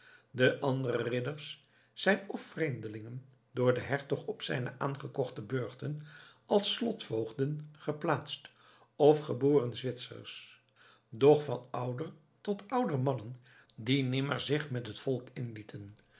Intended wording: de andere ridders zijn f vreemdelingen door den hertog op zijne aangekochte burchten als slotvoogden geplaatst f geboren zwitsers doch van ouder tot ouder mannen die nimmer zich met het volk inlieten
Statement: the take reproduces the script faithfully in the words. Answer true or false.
true